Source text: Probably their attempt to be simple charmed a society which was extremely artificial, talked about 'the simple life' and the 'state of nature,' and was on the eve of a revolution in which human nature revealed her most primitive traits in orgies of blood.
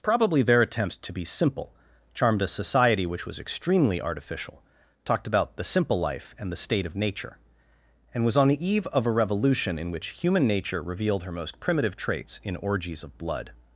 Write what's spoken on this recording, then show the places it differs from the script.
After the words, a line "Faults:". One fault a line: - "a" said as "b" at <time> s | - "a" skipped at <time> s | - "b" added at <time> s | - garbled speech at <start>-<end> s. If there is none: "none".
Probably their attempt to be simple charmed a society which was extremely artificial, talked about 'the simple life' and the 'state of nature,' and was on the eve of a revolution in which human nature revealed her most primitive traits in orgies of blood.
Faults:
none